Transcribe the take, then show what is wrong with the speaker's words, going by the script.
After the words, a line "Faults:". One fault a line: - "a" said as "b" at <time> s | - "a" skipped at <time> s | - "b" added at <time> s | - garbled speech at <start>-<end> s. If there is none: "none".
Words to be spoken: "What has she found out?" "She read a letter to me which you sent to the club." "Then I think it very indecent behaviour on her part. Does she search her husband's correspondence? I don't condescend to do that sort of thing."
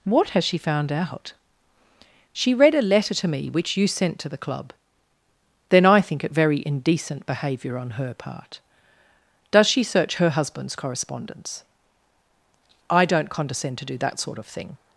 "What has she found out?" "She read a letter to me which you sent to the club." "Then I think it very indecent behaviour on her part. Does she search her husband's correspondence? I don't condescend to do that sort of thing."
Faults:
none